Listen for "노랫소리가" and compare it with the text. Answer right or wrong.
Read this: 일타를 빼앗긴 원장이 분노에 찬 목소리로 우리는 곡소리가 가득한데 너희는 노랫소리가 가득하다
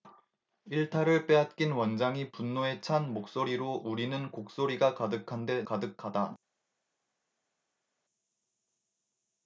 wrong